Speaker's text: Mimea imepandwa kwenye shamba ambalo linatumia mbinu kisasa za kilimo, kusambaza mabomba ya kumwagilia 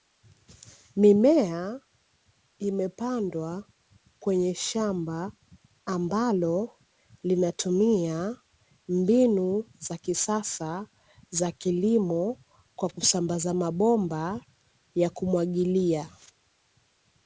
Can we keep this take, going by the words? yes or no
no